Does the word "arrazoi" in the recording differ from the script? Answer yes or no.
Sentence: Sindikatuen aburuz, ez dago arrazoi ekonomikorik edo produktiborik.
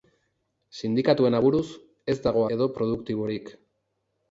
yes